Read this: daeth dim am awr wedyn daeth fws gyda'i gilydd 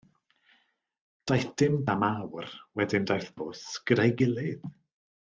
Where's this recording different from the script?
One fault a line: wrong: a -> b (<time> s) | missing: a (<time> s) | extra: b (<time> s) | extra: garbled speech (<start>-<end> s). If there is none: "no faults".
no faults